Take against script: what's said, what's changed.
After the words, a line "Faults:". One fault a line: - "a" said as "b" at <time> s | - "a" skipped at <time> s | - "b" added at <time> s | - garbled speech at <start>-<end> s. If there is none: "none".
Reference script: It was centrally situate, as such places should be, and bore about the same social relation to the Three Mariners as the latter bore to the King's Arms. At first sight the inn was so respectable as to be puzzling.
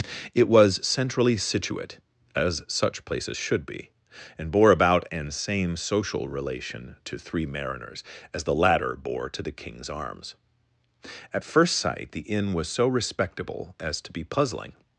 It was centrally situate, as such places should be, and bore about an same social relation to Three Mariners as the latter bore to the King's Arms. At first sight the inn was so respectable as to be puzzling.
Faults:
- "the" said as "an" at 5.1 s
- "the" skipped at 7.2 s